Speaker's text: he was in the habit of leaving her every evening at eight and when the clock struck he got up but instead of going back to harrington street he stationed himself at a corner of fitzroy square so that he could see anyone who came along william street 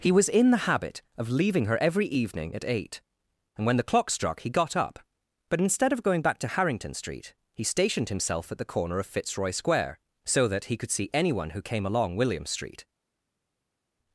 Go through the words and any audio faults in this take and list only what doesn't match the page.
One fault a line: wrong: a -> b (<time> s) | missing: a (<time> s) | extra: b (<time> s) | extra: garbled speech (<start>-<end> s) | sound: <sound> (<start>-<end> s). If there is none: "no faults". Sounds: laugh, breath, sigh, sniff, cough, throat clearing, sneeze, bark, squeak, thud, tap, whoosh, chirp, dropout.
wrong: a -> the (8.6 s)